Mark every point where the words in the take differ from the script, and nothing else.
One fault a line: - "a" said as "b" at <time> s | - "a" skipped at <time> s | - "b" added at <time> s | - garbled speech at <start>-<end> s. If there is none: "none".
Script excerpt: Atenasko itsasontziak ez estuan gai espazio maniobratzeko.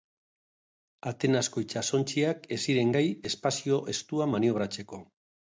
- "estuan" said as "ziren" at 2.7 s
- "estuan" added at 3.9 s